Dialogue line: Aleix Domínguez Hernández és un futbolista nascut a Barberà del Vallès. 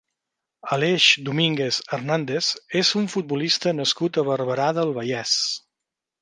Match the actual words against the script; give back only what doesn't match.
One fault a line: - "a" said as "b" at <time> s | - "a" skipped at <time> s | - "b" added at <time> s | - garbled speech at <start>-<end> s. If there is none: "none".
none